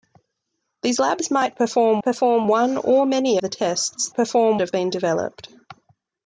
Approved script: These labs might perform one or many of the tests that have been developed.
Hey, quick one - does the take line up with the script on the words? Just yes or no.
no